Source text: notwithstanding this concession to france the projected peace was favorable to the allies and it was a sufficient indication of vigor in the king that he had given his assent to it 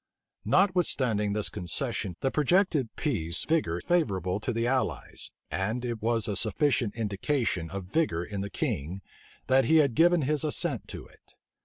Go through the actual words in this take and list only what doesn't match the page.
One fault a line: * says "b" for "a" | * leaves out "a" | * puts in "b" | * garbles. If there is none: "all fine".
* leaves out "to france"
* says "vigor" for "was"